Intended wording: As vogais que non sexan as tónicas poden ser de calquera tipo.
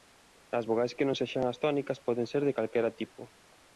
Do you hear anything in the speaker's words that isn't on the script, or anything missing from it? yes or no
no